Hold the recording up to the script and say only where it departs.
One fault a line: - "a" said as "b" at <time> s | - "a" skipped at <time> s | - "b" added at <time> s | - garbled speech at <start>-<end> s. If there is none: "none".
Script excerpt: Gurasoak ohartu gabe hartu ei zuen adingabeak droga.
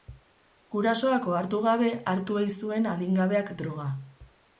none